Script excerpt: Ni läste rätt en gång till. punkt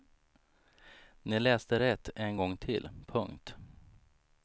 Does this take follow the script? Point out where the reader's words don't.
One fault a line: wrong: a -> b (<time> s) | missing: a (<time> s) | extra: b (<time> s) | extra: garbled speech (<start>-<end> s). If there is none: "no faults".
no faults